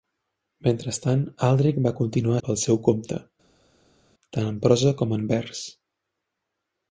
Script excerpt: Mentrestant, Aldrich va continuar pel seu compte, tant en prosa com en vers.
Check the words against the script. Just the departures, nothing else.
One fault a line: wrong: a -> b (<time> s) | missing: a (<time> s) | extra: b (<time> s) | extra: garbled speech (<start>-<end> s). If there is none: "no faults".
no faults